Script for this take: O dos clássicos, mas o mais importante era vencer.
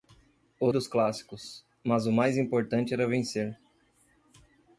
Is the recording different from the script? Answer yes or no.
no